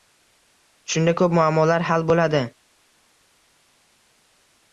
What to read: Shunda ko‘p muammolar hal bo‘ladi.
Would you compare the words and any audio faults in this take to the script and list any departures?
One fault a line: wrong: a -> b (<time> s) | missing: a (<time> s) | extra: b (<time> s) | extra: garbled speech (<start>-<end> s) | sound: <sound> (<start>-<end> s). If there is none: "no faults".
no faults